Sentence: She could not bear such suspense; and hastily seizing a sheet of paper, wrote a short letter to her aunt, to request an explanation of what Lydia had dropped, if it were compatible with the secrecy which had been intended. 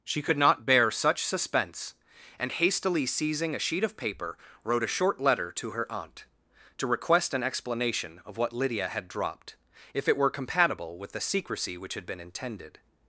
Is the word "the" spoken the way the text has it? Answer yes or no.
yes